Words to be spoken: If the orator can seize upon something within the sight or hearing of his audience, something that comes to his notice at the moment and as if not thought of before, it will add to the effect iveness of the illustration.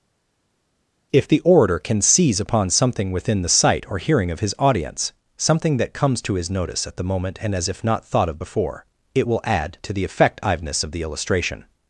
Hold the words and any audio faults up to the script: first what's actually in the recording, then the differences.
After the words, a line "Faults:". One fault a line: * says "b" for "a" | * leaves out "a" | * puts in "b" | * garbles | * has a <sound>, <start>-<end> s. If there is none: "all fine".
If the orator can seize upon something within the sight or hearing of his audience, something that comes to his notice at the moment and as if not thought of before, it will add to the effect iveness of the illustration.
Faults:
all fine